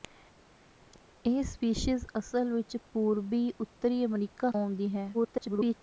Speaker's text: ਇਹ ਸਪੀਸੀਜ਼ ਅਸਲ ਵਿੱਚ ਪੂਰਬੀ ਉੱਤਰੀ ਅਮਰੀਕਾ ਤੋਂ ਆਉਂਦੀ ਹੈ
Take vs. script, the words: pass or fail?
fail